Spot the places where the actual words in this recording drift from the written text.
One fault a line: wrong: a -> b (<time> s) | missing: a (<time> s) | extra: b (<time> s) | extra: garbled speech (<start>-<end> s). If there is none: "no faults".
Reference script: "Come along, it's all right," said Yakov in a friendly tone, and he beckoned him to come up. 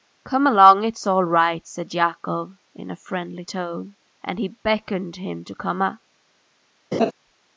no faults